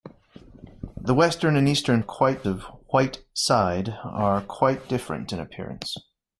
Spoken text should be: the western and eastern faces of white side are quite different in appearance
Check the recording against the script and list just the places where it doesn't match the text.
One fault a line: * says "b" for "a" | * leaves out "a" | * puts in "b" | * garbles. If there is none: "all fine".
* says "quite" for "faces"